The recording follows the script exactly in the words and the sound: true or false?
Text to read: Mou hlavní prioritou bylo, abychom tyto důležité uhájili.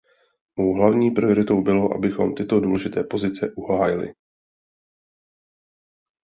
false